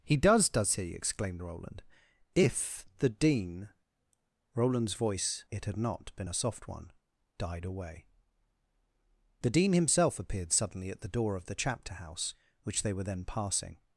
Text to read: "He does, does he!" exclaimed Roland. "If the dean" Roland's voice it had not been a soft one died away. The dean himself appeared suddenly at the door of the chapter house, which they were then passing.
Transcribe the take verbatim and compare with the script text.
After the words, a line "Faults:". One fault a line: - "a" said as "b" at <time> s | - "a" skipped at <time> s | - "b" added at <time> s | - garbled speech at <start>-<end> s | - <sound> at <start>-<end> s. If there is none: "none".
"He does, does he!" exclaimed Roland. "If the dean" Roland's voice it had not been a soft one died away. The dean himself appeared suddenly at the door of the chapter house, which they were then passing.
Faults:
none